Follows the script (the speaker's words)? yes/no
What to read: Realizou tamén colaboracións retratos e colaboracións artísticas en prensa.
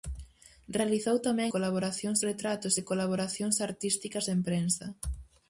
yes